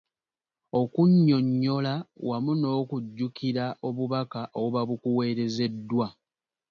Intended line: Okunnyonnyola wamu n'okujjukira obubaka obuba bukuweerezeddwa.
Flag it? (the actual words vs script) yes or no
no